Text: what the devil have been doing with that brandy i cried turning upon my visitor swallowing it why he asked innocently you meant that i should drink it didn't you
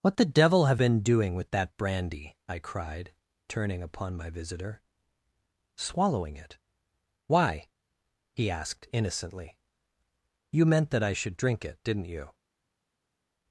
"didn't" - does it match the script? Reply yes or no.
yes